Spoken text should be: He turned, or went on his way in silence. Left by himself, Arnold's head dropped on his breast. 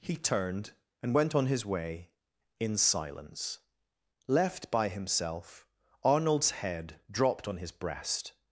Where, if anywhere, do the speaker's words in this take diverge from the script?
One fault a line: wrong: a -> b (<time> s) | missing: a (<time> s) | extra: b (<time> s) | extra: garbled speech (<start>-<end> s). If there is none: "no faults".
wrong: or -> and (1.0 s)